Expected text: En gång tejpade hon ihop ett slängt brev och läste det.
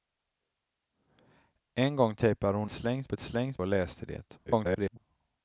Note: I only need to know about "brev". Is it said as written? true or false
false